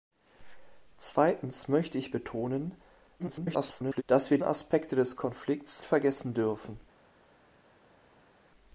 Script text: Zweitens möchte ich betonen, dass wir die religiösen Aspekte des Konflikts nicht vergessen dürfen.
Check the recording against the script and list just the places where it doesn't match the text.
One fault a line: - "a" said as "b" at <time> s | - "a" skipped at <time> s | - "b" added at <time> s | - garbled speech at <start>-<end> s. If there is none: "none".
- garbled speech at 3.2-4.0 s
- "die religiösen" skipped at 4.4 s
- "nicht" skipped at 5.8 s